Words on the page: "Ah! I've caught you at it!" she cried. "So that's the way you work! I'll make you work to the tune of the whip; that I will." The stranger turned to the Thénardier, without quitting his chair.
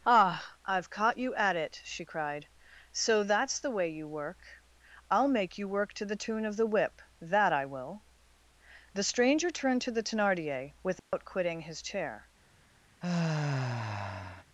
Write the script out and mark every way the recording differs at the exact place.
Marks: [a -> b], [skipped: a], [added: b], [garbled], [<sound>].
"Ah! I've caught you at it!" she cried. "So that's the way you work! I'll make you work to the tune of the whip; that I will." The stranger turned to the Thénardier, without [dropout] quitting his chair. [sigh]